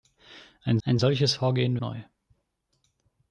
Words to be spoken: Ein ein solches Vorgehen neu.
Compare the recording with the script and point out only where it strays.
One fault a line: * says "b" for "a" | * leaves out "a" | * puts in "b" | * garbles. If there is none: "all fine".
all fine